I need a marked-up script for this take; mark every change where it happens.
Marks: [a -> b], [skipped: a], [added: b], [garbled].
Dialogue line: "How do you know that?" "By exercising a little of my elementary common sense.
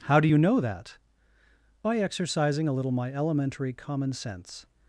"How do you know that?" "By exercising a little [skipped: of] my elementary common sense.